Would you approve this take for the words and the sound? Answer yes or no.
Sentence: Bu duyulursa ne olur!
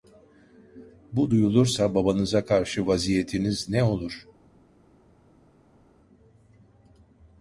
no